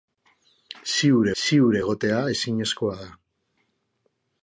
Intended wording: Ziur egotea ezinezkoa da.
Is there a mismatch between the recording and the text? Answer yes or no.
yes